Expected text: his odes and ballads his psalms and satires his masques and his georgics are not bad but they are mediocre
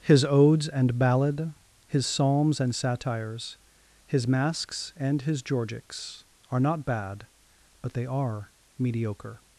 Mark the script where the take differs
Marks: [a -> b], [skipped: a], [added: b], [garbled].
his odes and [ballads -> ballad] his psalms and satires his masques and his georgics are not bad but they are mediocre